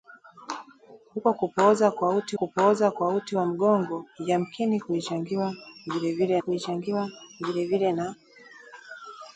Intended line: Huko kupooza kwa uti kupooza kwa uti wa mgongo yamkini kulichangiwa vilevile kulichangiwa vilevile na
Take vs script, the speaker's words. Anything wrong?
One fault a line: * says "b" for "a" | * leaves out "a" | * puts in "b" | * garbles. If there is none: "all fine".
all fine